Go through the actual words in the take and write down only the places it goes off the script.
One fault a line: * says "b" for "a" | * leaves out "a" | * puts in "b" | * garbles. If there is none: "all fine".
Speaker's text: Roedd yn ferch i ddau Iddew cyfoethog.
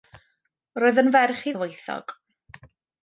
* leaves out "ddau Iddew"